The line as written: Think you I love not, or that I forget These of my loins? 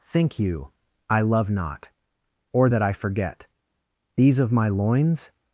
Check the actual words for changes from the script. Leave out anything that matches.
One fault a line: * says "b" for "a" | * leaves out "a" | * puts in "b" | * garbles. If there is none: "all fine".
all fine